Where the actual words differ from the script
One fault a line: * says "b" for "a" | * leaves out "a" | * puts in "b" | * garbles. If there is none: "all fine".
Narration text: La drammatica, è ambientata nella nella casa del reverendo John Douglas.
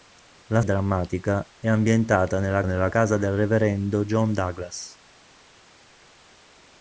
all fine